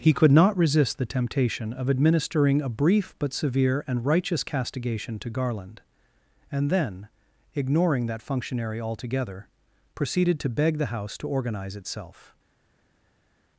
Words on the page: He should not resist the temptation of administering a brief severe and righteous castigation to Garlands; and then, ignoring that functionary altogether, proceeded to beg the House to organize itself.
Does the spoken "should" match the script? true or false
false